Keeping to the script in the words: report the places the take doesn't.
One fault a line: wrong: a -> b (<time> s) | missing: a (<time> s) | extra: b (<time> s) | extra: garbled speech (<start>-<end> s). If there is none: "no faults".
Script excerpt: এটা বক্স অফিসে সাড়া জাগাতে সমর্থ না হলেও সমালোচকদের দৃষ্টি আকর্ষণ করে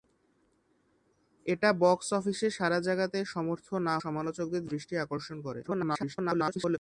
missing: হলেও (4.0 s)
extra: garbled speech (5.6-6.8 s)